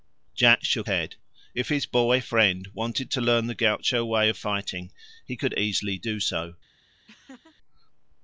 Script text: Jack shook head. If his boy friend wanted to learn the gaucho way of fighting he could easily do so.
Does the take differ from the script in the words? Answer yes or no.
no